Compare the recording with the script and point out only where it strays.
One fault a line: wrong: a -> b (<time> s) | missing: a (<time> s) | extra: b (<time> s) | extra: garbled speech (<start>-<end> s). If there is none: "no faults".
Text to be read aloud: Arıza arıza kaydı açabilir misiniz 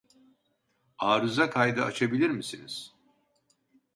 missing: arıza (1.5 s)